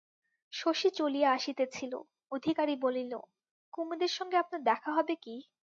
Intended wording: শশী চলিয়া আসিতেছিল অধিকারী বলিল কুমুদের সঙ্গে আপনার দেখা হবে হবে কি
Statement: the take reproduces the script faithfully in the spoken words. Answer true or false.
false